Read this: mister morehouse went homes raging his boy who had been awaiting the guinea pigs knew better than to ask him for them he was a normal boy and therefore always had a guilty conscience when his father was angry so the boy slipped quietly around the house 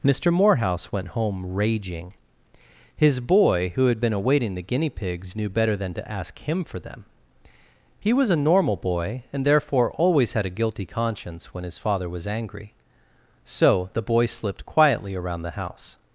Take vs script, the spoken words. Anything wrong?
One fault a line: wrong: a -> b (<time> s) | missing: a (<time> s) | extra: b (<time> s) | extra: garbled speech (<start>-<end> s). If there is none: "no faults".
wrong: homes -> home (1.1 s)